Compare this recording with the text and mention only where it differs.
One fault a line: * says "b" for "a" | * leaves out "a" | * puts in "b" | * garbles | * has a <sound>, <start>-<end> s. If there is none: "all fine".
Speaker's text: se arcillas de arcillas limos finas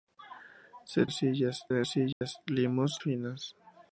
* has a dropout, 2.1-2.2 s